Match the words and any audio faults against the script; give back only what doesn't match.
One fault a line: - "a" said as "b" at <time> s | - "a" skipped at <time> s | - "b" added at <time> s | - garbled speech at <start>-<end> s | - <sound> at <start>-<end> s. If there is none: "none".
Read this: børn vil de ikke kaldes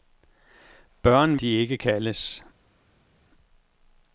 - "vil" skipped at 1.4 s